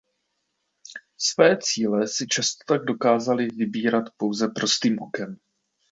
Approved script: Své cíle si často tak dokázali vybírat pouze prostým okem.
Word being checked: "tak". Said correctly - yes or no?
yes